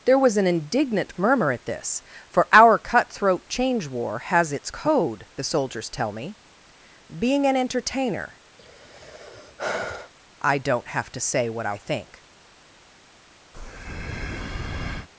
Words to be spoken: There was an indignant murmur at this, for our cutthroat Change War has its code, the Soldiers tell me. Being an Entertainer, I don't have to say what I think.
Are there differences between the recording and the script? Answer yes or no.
no